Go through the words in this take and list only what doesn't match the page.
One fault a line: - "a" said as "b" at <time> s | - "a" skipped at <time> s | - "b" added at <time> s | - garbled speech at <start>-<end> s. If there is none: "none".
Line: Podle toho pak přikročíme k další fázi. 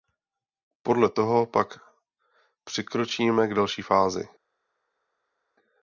none